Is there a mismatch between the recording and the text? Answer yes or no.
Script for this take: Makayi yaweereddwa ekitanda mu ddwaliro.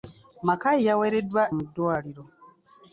yes